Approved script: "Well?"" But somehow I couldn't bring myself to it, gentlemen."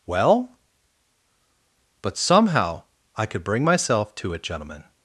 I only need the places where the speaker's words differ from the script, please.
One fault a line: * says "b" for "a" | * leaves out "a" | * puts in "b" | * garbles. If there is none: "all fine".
* says "could" for "couldn't"